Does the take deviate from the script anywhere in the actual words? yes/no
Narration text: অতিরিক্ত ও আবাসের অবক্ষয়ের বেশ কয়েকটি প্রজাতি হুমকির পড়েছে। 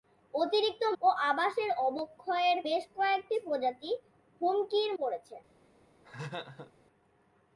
no